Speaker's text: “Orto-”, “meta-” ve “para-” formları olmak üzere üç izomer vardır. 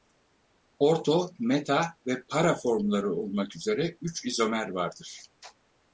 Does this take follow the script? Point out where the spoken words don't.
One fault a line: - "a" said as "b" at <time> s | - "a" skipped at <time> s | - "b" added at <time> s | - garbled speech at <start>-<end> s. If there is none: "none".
none